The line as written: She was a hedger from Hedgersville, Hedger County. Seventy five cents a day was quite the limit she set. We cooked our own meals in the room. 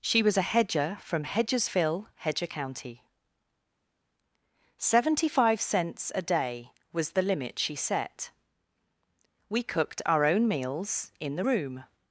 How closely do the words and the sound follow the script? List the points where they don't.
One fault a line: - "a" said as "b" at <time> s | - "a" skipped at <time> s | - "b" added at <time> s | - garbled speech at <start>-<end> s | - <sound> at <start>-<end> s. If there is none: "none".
- "quite" skipped at 7.1 s